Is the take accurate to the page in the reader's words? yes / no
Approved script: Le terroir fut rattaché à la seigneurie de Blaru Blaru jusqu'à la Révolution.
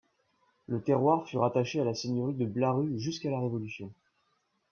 no